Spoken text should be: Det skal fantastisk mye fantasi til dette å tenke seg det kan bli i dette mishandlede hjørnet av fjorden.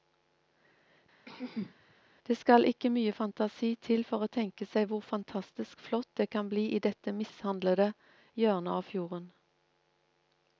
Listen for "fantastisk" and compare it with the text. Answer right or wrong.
wrong